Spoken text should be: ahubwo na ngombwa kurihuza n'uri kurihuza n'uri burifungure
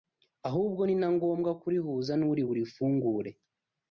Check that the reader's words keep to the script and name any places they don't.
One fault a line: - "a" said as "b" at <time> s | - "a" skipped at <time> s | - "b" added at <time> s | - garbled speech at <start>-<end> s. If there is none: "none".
- "ni" added at 0.8 s
- "kurihuza n'uri" skipped at 2.4 s